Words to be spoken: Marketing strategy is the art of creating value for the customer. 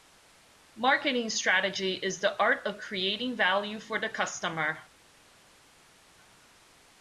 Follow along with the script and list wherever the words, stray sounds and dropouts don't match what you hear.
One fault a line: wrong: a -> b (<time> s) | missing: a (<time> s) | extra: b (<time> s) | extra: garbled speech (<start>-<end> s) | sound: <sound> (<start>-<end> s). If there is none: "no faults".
no faults